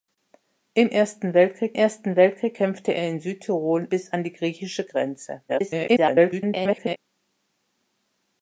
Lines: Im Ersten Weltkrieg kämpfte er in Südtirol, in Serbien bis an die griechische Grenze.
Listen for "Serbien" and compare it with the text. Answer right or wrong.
wrong